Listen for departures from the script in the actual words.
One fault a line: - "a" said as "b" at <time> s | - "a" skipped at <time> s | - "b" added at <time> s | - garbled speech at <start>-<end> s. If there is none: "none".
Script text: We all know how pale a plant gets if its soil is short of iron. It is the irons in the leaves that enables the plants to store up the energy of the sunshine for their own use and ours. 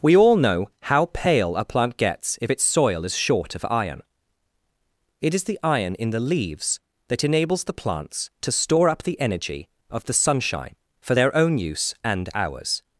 - "irons" said as "iron" at 5.6 s